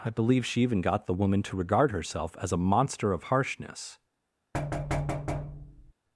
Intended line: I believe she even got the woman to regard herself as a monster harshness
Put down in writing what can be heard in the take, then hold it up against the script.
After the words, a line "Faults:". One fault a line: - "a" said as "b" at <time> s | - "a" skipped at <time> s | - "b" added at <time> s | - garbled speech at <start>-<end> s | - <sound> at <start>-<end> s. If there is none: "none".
I believe she even got the woman to regard herself as a monster of harshness
Faults:
- "of" added at 3.1 s
- thud at 4.5-5.9 s